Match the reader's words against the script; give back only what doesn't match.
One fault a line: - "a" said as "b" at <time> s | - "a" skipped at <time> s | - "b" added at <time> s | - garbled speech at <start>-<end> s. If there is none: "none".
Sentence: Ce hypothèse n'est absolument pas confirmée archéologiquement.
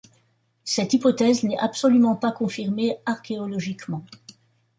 - "Ce" said as "Cette" at 0.6 s